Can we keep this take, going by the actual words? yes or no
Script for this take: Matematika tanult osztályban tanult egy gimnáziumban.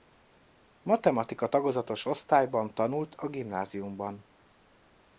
no